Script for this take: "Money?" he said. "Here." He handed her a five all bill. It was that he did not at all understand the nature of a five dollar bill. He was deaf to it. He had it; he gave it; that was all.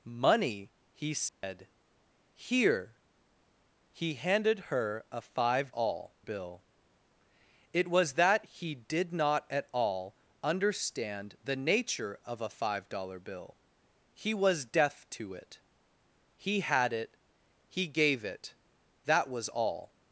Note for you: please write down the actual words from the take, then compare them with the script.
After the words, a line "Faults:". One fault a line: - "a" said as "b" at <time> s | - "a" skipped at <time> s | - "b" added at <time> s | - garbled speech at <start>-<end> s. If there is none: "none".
"Money?" he said. "Here." He handed her a five all bill. It was that he did not at all understand the nature of a five dollar bill. He was deaf to it. He had it; he gave it; that was all.
Faults:
none